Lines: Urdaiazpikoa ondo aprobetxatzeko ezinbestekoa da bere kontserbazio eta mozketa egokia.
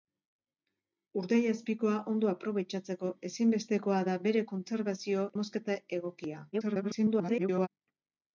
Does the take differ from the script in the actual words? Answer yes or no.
yes